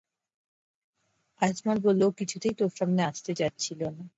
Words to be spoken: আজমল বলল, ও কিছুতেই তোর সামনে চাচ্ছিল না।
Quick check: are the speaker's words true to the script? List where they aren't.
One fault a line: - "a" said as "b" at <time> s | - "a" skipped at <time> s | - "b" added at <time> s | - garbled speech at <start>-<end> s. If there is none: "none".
- "আসতে" added at 3.0 s